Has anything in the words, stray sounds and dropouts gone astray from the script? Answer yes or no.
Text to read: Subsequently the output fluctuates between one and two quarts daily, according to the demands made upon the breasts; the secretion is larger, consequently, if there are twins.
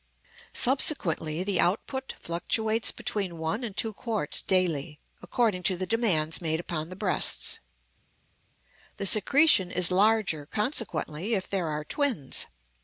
no